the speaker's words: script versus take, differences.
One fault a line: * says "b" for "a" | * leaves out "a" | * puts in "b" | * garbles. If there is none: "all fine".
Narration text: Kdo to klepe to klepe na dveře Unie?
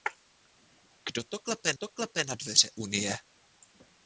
all fine